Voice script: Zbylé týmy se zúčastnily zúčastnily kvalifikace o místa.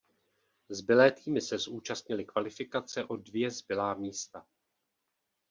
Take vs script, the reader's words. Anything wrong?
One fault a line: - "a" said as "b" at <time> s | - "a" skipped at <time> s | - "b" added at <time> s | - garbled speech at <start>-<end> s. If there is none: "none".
- "zúčastnily" skipped at 2.2 s
- "dvě zbylá" added at 3.2 s